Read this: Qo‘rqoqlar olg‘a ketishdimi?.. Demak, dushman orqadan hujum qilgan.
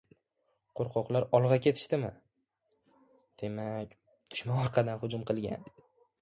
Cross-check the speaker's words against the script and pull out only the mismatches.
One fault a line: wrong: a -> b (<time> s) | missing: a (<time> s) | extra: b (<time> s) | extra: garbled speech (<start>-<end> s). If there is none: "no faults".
no faults